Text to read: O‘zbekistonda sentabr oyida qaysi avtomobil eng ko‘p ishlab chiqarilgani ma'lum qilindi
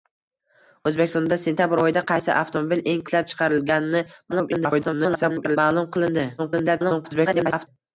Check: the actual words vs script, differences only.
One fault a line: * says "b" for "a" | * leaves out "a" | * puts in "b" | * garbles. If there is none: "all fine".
* leaves out "ko‘p"
* garbles
* garbles